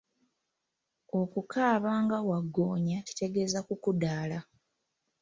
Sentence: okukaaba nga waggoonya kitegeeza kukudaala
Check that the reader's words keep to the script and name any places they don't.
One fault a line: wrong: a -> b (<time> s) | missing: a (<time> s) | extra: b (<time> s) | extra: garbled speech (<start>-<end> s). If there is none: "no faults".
no faults